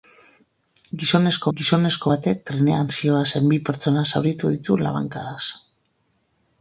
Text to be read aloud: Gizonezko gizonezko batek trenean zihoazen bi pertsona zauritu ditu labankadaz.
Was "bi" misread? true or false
false